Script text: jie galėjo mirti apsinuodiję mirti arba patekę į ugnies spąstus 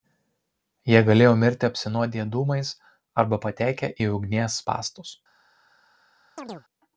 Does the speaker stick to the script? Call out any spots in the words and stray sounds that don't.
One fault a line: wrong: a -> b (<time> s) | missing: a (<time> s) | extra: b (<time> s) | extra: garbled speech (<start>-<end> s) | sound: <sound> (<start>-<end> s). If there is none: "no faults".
wrong: mirti -> dūmais (2.4 s)
sound: chirp (6.4-6.6 s)